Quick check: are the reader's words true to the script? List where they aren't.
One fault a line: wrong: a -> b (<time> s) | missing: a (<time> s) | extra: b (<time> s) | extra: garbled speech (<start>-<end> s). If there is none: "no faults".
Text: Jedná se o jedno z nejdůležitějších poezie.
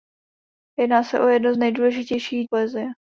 no faults